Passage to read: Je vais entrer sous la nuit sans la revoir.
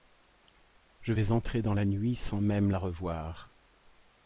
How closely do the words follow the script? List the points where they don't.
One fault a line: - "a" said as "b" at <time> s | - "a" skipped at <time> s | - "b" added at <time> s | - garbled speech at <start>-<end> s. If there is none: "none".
- "sous" said as "dans" at 1.6 s
- "même" added at 2.4 s